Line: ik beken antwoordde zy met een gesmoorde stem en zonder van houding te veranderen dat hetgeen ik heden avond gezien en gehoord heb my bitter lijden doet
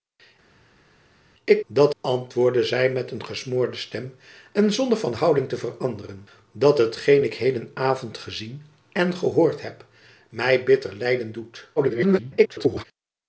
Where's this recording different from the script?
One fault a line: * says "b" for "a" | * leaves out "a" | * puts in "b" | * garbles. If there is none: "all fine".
* says "dat" for "beken"
* garbles